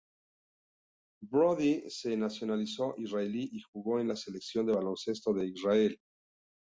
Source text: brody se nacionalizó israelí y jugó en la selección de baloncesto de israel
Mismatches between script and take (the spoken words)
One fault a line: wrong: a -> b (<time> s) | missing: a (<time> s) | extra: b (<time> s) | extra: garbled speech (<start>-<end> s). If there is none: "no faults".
no faults